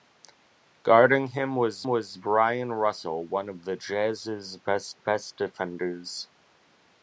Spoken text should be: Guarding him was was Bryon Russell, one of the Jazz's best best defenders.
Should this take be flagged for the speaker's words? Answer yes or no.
no